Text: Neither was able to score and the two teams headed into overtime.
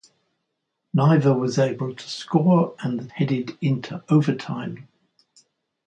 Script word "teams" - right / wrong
wrong